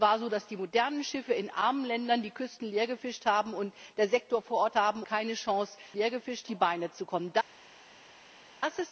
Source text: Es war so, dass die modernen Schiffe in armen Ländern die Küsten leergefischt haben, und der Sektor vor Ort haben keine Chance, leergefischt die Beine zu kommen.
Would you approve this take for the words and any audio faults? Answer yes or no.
yes